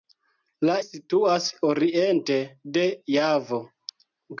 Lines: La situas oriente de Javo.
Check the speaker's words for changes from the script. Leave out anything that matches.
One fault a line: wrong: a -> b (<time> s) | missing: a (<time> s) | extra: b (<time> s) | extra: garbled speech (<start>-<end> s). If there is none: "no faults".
no faults